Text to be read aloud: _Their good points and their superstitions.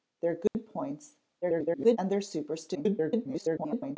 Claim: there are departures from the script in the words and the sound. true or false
true